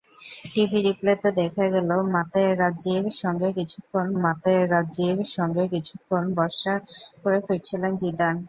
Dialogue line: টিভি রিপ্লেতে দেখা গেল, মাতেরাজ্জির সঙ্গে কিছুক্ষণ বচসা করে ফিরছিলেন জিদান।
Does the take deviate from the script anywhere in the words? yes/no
yes